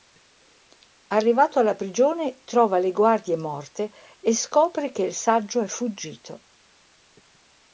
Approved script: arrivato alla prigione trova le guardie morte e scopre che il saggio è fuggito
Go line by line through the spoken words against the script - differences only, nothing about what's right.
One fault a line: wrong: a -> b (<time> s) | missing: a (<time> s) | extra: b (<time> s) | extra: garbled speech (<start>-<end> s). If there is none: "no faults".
no faults